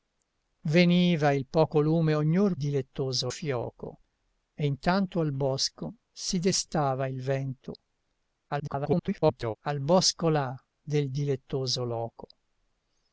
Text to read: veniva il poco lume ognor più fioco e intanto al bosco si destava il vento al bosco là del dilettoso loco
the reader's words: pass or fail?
fail